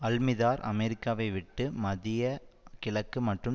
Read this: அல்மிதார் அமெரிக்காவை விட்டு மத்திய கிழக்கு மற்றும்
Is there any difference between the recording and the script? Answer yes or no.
no